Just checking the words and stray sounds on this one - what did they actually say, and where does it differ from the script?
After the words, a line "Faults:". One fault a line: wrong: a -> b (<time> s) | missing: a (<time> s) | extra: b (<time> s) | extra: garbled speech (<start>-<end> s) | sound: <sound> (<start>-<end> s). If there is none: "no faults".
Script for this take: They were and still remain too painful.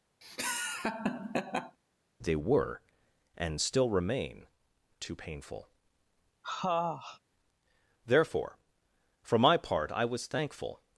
They were and still remain too painful. Therefore, for my part I was thankful
Faults:
sound: laugh (0.2-1.8 s)
sound: sniff (6.4-7.2 s)
extra: Therefore for my part I was thankful (8.1 s)